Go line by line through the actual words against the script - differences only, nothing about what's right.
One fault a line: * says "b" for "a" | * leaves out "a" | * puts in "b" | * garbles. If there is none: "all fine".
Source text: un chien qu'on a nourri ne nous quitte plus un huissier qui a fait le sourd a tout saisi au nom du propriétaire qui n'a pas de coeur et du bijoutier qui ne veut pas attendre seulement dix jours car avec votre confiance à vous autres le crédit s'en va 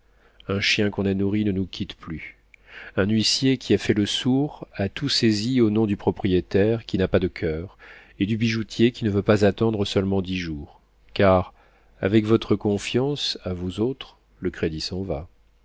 all fine